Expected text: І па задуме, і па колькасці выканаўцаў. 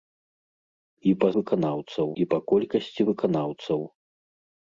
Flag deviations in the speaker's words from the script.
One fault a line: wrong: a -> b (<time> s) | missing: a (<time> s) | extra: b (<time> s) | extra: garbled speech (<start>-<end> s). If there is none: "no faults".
wrong: задуме -> выканаўцаў (1.4 s)